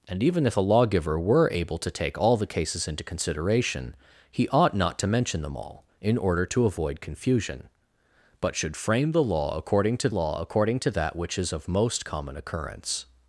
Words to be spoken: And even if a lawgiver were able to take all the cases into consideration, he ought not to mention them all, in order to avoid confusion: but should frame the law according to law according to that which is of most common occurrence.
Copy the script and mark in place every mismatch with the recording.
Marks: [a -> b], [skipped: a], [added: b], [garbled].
And even if a lawgiver were able to take all the cases into consideration, he ought not to mention them all, in order to avoid confusion: but should frame the law according to law according to that which is of most common occurrence.